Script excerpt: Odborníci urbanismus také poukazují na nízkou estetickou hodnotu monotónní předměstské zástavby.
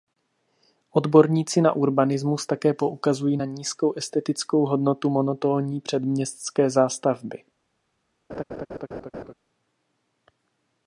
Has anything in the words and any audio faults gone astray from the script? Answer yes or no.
yes